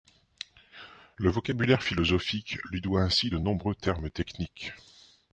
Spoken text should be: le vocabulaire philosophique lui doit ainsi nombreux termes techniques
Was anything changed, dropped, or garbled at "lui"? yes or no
no